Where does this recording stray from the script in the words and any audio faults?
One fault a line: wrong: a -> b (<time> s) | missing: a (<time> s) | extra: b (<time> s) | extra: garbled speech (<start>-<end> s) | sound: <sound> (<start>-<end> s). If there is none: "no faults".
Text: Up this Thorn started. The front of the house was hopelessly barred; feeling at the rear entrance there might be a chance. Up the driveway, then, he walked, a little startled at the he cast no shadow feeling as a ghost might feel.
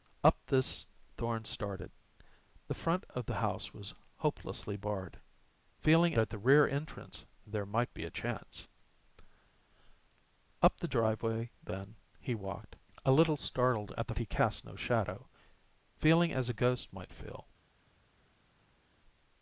no faults